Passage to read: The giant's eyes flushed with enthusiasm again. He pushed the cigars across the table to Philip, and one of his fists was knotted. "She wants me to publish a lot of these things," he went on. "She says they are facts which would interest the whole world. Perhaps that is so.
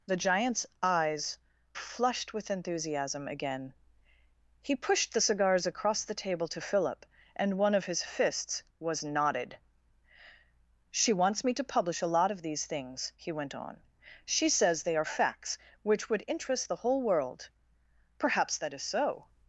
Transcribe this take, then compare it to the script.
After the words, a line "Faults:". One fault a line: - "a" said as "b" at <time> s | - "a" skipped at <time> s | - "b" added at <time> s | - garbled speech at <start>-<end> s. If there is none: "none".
The giant's eyes flushed with enthusiasm again. He pushed the cigars across the table to Philip, and one of his fists was knotted. "She wants me to publish a lot of these things," he went on. "She says they are facts which would interest the whole world. Perhaps that is so.
Faults:
none